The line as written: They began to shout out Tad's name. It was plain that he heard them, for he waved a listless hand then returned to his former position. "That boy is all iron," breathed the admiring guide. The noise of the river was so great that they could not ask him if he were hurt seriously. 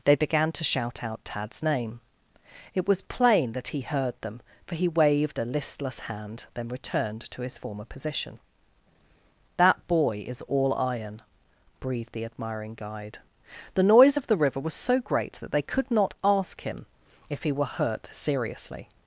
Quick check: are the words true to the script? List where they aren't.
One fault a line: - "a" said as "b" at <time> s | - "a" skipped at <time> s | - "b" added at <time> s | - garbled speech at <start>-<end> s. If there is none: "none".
none